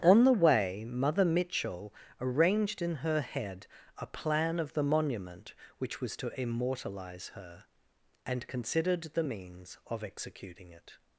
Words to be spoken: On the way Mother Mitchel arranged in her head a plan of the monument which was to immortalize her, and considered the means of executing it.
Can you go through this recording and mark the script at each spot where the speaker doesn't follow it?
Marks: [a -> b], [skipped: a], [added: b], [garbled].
On the way Mother Mitchel arranged in her head a plan of the monument which was to immortalize her, and considered the means of executing it.